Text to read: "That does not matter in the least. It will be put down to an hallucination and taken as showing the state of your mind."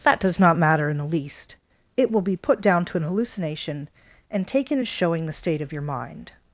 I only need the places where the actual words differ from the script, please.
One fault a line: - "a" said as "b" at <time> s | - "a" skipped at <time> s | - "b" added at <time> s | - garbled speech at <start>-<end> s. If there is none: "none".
none